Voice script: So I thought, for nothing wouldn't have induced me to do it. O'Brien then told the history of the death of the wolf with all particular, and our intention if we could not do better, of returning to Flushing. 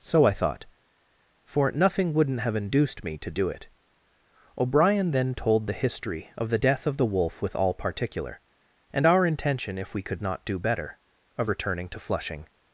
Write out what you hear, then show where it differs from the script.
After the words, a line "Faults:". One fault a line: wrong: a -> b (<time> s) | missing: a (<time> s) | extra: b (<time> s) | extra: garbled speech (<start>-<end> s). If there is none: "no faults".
So I thought, for nothing wouldn't have induced me to do it. O'Brien then told the history of the death of the wolf with all particular, and our intention if we could not do better, of returning to Flushing.
Faults:
no faults